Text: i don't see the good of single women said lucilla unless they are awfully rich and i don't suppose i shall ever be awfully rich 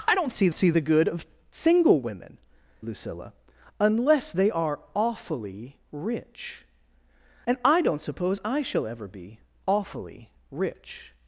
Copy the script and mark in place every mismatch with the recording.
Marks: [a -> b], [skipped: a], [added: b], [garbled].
i don't see [added: see] the good of single women [skipped: said] lucilla unless they are awfully rich and i don't suppose i shall ever be awfully rich